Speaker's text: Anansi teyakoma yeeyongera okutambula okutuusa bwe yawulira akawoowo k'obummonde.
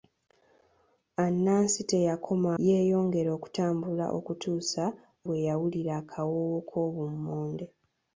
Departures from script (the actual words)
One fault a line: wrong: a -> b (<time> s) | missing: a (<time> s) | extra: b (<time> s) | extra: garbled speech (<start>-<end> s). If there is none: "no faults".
no faults